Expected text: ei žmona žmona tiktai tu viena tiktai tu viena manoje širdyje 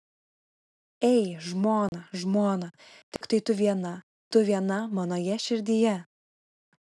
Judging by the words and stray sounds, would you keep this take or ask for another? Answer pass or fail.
fail